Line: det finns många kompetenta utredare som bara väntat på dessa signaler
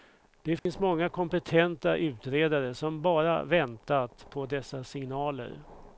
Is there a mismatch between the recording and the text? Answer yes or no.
no